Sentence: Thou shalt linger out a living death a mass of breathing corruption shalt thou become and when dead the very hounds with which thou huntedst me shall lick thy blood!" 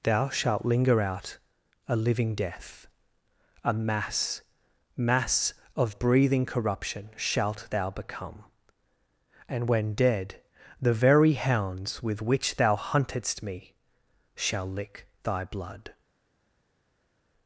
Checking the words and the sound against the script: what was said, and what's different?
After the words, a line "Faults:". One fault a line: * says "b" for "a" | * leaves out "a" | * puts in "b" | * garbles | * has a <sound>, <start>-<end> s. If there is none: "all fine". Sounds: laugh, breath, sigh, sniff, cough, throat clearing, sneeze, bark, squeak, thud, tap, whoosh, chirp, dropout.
Thou shalt linger out a living death a mass mass of breathing corruption shalt thou become and when dead the very hounds with which thou huntedst me shall lick thy blood!"
Faults:
* puts in "mass"